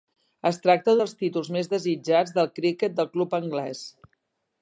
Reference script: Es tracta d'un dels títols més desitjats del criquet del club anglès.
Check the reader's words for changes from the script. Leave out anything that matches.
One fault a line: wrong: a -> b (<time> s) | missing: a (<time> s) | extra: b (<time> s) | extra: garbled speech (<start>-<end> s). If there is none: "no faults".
missing: d'un (0.9 s)